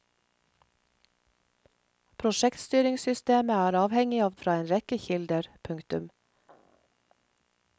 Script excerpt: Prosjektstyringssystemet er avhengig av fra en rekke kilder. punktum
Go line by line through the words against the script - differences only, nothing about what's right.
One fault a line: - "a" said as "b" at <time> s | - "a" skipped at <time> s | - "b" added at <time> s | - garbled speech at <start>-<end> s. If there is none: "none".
none